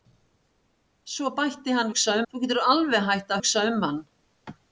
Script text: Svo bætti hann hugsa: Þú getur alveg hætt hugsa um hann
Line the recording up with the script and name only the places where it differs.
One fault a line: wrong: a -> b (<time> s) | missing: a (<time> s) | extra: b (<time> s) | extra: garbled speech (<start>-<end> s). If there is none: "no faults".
no faults